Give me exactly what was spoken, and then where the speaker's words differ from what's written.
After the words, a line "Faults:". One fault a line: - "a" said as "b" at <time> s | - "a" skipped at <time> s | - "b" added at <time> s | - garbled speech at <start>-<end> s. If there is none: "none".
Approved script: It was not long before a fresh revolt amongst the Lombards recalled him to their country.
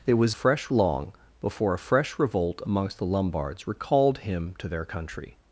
It was fresh long before a fresh revolt amongst the Lombards recalled him to their country.
Faults:
- "not" said as "fresh" at 0.3 s